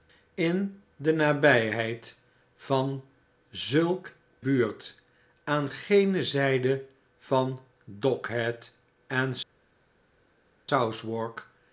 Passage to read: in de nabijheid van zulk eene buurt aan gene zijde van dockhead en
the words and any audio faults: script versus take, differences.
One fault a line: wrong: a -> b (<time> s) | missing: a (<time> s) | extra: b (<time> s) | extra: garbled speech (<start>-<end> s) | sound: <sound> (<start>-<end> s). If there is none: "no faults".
missing: eene (4.1 s)